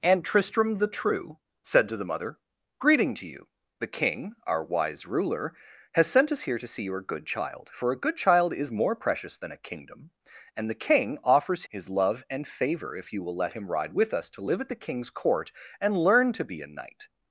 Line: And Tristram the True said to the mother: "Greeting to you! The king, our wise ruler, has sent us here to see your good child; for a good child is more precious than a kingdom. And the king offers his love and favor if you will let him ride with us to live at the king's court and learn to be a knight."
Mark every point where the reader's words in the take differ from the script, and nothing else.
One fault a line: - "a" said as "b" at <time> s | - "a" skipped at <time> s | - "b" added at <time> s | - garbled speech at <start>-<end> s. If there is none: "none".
none